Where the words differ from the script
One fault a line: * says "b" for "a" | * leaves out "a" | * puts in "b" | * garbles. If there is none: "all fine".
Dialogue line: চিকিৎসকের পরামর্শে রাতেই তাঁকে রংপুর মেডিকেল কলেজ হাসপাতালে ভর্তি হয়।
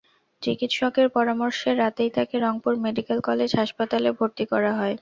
* puts in "করা"